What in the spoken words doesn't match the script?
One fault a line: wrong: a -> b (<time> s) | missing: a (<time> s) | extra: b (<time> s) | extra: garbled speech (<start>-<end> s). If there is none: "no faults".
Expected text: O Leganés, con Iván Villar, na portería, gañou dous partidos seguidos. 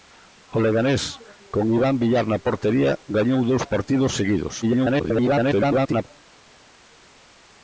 extra: garbled speech (4.6-6.1 s)